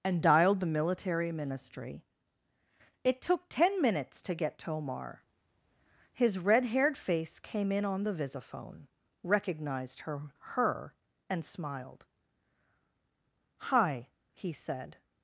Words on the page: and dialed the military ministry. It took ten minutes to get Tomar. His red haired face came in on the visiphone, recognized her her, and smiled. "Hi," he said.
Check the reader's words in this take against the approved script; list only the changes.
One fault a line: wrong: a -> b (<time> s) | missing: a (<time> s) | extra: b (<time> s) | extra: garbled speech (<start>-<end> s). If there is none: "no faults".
no faults